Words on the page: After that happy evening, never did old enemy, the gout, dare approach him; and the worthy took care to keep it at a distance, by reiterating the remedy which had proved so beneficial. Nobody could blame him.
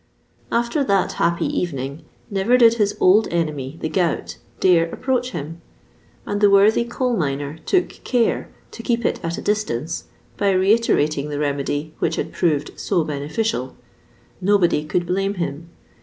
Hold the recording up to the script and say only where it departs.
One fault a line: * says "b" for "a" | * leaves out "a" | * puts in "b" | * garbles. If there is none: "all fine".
* puts in "his"
* puts in "coal miner"